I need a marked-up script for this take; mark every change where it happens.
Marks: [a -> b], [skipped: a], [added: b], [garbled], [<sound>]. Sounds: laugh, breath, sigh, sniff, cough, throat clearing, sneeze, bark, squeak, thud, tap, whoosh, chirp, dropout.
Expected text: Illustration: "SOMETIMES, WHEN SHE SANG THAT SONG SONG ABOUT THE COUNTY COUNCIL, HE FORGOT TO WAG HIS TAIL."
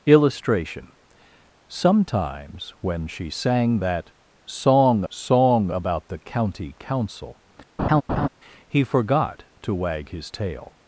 Illustration: "SOMETIMES, WHEN SHE SANG THAT SONG SONG ABOUT THE COUNTY COUNCIL, [laugh] HE FORGOT TO WAG HIS TAIL."